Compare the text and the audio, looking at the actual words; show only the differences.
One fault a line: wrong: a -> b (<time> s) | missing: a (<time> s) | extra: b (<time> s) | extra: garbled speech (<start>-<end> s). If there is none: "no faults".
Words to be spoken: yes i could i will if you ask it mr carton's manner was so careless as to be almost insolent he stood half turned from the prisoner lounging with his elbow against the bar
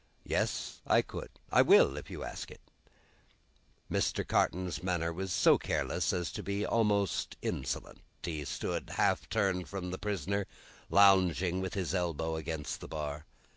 no faults